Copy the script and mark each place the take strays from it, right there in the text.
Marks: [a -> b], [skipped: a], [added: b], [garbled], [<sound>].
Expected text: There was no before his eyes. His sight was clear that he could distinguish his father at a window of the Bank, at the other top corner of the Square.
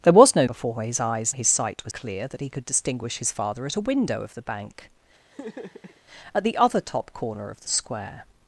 There was no before his eyes. His sight was clear that he could distinguish his father at a window of the Bank, [laugh] at the other top corner of the Square.